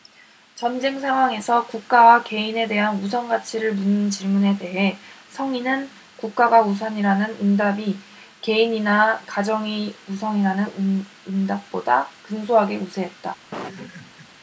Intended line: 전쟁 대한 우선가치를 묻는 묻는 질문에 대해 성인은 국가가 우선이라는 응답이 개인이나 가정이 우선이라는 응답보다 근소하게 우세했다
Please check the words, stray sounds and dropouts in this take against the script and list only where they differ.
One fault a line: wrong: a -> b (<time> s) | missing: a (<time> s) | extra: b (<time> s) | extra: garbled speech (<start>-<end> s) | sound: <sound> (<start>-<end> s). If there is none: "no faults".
extra: 상황에서 국가와 개인에 (1.0 s)
missing: 묻는 (4.1 s)
sound: laugh (13.5-14.3 s)